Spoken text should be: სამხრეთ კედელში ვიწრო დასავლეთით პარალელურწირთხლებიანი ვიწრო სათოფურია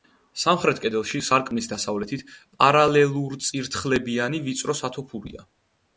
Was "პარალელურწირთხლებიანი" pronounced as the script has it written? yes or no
yes